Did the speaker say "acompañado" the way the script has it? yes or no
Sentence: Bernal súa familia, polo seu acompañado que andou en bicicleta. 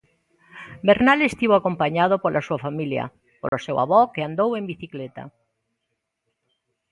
no